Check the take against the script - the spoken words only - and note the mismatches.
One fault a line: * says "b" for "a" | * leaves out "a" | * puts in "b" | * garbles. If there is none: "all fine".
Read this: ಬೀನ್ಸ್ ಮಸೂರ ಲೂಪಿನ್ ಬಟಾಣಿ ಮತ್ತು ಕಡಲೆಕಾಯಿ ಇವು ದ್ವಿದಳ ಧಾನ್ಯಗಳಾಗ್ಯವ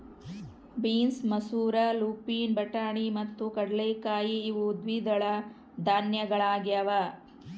all fine